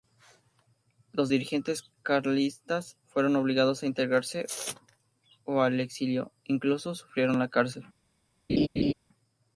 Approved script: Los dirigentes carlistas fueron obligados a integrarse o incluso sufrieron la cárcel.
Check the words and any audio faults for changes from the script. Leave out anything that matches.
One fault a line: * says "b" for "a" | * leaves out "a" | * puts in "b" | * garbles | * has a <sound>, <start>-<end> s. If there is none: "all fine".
* puts in "al exilio"
* has a laugh, 8.5-8.9 s